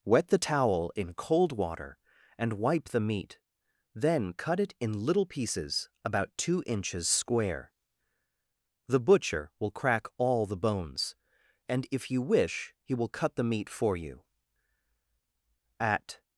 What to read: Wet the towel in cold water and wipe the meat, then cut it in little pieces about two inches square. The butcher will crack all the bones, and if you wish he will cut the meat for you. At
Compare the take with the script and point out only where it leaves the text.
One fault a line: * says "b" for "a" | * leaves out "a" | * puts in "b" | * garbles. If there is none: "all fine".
all fine